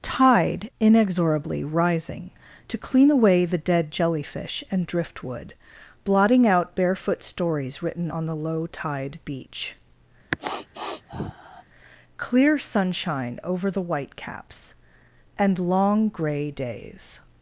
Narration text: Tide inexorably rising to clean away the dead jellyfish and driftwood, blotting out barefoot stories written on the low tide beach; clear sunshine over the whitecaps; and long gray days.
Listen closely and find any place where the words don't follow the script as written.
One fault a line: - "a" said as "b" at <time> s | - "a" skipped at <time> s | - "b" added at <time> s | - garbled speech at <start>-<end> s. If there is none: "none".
none